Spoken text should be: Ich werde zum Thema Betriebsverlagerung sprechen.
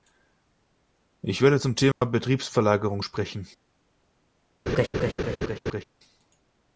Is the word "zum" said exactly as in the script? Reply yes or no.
yes